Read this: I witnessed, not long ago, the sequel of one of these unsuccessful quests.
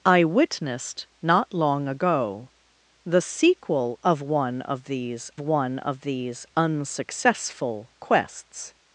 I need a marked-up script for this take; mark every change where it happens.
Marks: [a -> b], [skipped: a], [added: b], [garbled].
I witnessed, not long ago, the sequel of one of these [added: one of these] unsuccessful quests.